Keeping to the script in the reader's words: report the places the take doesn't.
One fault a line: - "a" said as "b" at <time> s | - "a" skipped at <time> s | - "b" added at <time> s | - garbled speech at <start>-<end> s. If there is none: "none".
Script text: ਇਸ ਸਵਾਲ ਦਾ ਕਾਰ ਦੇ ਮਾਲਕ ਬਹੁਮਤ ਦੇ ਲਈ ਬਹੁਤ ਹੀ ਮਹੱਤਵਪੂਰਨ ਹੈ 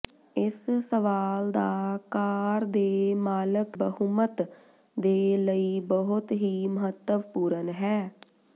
none